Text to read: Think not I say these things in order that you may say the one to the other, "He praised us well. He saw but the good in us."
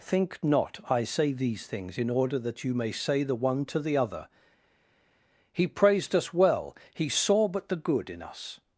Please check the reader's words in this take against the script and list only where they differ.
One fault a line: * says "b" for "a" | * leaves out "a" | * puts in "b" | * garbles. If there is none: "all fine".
all fine